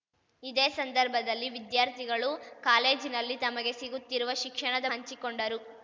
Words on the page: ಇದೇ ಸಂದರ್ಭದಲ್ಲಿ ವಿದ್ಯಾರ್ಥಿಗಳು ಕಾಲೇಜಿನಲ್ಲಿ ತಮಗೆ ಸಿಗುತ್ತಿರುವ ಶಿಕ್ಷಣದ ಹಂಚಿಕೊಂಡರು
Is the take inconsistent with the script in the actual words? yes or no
no